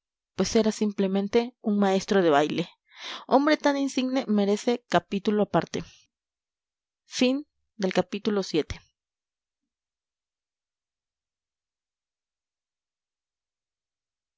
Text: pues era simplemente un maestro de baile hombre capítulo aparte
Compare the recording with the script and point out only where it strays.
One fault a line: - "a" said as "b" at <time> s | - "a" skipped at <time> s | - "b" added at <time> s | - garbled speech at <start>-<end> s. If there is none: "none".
- "tan insigne merece" added at 3.6 s